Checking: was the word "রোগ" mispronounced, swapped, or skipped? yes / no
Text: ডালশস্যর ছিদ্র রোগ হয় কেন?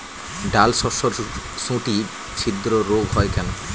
no